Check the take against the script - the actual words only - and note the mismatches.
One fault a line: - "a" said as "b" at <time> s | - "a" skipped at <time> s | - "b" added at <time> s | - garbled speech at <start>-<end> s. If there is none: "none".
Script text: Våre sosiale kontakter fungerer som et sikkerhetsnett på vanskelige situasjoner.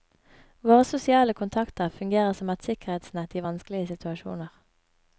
- "på" said as "i" at 3.4 s